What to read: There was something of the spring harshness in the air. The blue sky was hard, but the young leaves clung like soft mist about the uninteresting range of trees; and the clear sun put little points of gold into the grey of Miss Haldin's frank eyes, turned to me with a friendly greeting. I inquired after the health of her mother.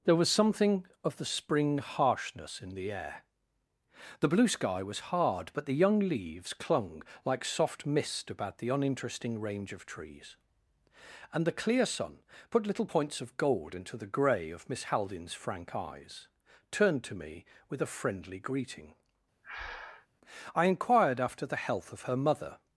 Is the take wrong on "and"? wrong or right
right